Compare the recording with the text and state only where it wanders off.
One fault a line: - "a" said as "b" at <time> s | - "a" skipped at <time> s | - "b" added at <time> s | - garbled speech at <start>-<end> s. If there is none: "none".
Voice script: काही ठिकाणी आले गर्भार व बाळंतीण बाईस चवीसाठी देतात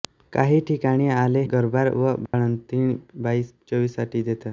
none